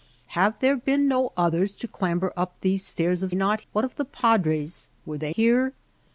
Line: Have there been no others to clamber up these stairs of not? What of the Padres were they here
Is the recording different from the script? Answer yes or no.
no